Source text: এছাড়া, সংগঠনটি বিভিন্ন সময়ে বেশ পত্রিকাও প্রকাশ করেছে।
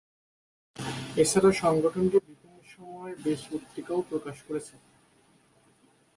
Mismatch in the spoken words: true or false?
false